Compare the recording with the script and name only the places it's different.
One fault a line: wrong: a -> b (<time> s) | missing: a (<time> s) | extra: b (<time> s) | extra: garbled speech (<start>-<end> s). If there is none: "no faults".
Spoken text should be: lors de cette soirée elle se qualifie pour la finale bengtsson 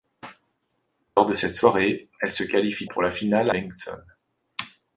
no faults